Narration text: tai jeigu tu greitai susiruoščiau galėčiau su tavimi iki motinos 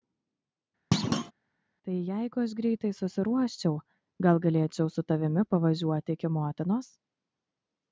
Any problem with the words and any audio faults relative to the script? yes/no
yes